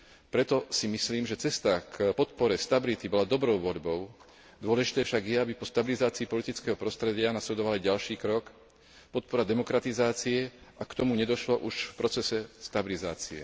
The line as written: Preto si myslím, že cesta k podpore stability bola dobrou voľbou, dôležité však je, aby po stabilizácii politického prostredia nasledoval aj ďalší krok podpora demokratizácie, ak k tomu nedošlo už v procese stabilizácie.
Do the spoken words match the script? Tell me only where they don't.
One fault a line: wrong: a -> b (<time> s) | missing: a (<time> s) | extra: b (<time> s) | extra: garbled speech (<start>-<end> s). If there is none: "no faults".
no faults